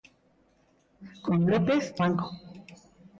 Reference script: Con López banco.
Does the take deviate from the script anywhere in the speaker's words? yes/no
no